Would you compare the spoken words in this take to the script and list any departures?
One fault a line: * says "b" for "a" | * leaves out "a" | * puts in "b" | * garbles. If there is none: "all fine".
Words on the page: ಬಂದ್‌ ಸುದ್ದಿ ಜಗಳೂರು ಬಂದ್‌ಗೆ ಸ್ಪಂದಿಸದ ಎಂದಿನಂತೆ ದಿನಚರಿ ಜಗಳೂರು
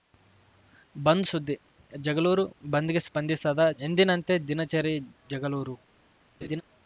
all fine